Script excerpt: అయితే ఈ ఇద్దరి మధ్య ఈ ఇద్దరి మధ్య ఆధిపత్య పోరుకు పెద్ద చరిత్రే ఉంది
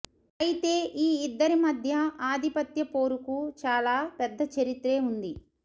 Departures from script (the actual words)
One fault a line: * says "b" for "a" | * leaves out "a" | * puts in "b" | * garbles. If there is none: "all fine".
* leaves out "ఈ ఇద్దరి మధ్య"
* puts in "చాలా"